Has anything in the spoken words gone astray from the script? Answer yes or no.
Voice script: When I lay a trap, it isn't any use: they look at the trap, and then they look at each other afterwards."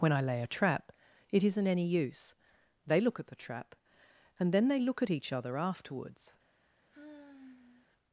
no